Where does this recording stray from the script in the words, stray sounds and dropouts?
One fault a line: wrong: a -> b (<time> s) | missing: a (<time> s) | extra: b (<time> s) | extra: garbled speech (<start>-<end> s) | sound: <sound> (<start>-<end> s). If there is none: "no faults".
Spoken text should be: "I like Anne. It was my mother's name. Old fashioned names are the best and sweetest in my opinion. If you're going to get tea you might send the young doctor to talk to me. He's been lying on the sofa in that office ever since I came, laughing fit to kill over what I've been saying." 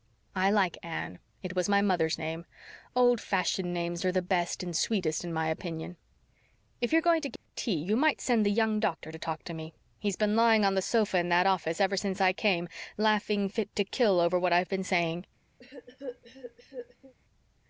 sound: dropout (7.4-7.5 s)
sound: cough (15.6-17.1 s)